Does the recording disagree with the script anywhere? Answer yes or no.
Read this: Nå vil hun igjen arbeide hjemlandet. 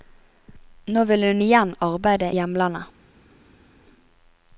no